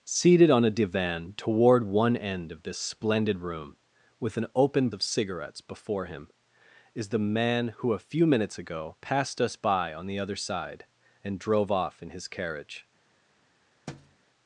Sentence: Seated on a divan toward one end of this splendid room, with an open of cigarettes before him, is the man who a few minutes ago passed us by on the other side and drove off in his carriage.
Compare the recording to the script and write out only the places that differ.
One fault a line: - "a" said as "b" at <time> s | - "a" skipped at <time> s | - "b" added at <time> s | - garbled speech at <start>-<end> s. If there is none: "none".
none